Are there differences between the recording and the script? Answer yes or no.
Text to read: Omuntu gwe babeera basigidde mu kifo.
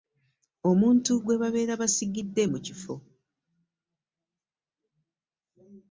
no